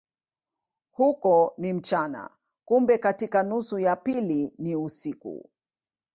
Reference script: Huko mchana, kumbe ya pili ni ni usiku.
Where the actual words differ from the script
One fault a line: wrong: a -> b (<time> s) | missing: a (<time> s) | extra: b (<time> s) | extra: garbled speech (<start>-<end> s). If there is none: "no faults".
extra: ni (1.6 s)
extra: katika nusu (3.0 s)
missing: ni (4.8 s)